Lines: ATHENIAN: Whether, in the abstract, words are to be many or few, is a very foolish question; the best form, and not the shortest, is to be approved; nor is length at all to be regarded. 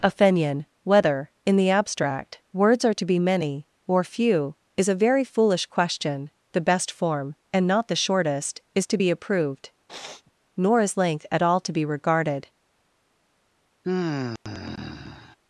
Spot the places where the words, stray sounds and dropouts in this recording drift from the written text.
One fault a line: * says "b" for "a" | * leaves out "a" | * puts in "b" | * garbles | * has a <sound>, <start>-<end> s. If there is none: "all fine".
* has a sniff, 9.9-10.3 s
* has a sigh, 13.8-15.4 s